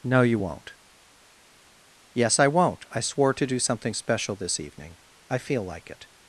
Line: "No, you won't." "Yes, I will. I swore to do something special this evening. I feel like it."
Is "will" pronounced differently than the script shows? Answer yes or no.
yes